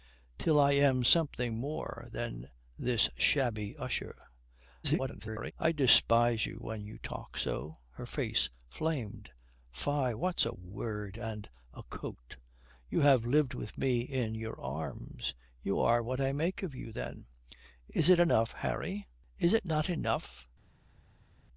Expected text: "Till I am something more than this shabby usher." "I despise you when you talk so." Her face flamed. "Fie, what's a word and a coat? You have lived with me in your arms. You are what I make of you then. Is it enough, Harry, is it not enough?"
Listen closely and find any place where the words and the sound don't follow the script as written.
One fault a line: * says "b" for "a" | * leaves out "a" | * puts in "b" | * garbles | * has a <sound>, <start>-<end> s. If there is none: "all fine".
* garbles